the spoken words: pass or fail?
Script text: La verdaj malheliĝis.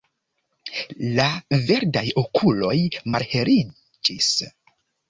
fail